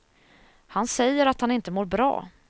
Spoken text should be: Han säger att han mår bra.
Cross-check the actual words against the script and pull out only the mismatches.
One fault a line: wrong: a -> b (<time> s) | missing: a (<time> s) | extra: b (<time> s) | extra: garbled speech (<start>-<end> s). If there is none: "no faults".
extra: inte (1.5 s)